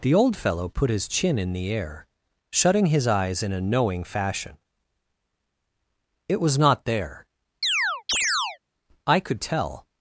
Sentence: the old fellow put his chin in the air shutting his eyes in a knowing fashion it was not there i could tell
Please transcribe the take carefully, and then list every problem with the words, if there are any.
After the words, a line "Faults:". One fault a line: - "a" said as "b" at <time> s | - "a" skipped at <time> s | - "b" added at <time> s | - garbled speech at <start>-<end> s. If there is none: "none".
the old fellow put his chin in the air shutting his eyes in a knowing fashion it was not there i could tell
Faults:
none